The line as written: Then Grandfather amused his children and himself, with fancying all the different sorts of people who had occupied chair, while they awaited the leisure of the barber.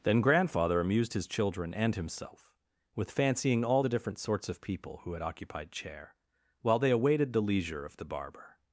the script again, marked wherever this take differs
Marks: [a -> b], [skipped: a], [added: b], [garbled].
Then Grandfather amused his children and himself, with fancying all the different sorts of people who had occupied chair, while they awaited the leisure of the barber.